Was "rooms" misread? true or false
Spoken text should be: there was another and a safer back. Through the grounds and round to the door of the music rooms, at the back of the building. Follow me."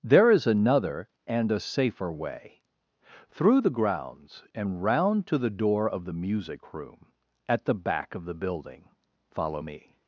true